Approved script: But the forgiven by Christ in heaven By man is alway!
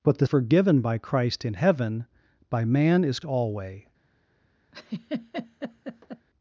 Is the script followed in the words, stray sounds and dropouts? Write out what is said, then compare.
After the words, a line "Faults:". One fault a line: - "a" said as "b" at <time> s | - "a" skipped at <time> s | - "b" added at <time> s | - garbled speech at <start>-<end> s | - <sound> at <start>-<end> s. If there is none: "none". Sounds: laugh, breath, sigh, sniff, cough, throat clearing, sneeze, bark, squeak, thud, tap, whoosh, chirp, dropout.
But the forgiven by Christ in heaven By man is alway!
Faults:
- laugh at 4.7-6.3 s